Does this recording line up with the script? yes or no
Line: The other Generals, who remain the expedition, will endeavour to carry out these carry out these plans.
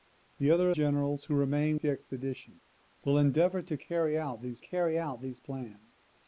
yes